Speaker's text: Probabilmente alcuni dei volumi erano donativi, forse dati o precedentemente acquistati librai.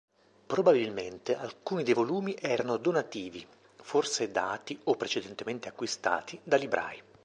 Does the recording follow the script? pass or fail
fail